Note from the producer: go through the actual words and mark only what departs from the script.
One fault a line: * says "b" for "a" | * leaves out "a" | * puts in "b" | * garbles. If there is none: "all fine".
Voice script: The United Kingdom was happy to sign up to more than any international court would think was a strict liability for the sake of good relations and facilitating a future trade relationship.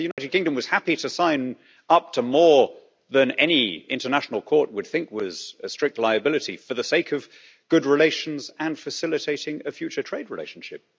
all fine